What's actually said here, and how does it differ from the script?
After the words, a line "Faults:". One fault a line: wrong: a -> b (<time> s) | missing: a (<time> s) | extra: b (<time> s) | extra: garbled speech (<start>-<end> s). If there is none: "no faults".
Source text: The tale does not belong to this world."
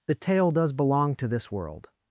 The tale does belong to this world."
Faults:
missing: not (0.7 s)